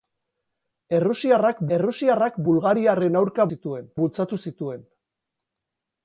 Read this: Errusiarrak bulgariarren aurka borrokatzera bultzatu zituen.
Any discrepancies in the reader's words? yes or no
yes